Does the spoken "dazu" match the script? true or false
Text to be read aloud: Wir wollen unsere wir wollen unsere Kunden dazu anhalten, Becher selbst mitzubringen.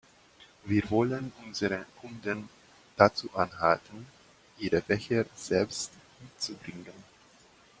true